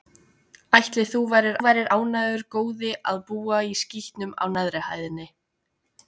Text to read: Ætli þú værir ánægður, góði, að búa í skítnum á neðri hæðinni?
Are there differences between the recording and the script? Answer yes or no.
yes